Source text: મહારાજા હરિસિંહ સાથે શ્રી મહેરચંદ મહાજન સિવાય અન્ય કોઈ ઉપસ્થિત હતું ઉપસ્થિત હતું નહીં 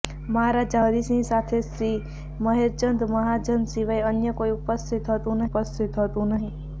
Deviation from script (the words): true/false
false